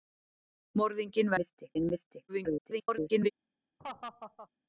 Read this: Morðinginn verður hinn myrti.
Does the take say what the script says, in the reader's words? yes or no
no